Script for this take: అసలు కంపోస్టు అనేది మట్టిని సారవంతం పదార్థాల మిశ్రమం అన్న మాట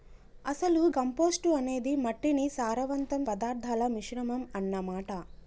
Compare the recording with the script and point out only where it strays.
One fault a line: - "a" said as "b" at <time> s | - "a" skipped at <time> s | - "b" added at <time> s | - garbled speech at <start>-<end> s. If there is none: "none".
none